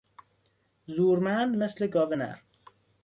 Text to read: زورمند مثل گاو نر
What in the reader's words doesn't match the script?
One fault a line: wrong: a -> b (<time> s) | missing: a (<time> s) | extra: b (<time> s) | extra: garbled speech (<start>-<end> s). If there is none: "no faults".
no faults